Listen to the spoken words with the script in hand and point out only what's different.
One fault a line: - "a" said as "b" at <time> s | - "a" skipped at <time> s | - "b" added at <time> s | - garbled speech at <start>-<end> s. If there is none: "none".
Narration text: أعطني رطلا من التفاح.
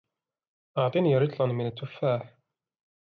none